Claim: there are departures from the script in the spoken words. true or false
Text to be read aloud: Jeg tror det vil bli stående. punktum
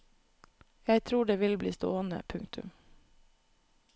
false